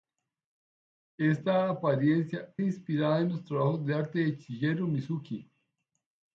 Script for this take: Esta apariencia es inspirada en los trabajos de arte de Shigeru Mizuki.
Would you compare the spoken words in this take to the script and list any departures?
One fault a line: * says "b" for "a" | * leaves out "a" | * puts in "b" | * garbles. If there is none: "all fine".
* leaves out "es"